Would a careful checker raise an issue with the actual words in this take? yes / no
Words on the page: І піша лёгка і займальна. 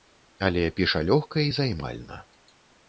yes